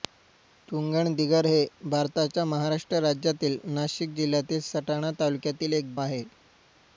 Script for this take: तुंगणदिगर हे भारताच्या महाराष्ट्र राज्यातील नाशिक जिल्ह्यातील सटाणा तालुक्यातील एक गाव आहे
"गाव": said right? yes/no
no